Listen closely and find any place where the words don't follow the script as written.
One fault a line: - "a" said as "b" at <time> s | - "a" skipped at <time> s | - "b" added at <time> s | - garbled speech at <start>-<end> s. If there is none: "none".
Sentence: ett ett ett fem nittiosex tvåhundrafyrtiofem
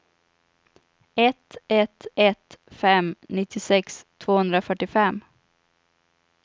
none